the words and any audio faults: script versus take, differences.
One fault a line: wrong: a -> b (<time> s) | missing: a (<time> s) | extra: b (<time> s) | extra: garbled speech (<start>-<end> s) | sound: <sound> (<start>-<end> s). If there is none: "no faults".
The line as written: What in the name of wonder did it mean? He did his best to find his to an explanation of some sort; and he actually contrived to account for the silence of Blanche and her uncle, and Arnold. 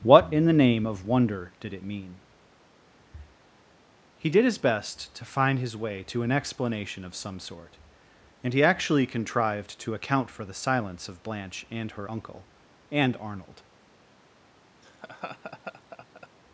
extra: way (5.8 s)
sound: laugh (14.8-16.3 s)